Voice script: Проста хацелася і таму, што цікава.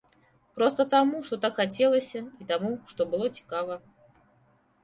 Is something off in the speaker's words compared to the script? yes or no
yes